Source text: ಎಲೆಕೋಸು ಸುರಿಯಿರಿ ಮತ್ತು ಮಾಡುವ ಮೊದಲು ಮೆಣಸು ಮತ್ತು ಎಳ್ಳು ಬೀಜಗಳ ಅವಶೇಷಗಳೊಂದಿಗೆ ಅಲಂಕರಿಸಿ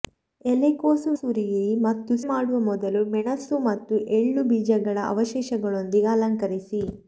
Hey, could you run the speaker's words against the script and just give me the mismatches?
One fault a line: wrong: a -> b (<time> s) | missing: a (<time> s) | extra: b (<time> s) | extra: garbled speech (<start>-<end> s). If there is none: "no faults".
no faults